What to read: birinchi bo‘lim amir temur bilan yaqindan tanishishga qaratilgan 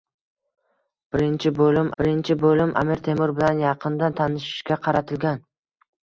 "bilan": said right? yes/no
yes